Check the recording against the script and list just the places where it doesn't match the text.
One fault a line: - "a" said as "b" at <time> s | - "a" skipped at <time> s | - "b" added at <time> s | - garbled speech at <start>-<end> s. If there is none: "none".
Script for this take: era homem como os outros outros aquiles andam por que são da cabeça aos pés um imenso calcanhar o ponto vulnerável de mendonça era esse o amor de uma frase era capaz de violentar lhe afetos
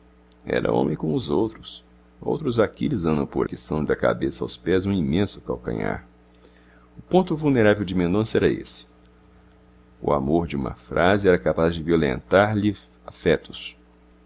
none